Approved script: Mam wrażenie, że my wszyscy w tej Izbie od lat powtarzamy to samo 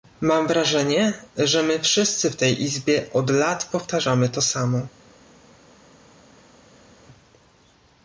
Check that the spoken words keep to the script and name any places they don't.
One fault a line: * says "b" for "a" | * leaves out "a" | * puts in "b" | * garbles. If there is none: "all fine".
all fine